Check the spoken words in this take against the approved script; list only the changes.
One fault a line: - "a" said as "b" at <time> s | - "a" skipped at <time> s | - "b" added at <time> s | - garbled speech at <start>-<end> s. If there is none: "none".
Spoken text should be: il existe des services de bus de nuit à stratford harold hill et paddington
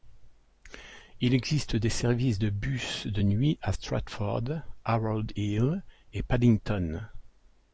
none